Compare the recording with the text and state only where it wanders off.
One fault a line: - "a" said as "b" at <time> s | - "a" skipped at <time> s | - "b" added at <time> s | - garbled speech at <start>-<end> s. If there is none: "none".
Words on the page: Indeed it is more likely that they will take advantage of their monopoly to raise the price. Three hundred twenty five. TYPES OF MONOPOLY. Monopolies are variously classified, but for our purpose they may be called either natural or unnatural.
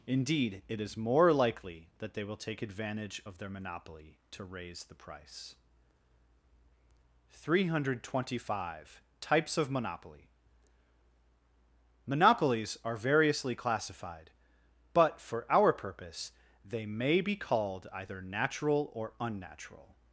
none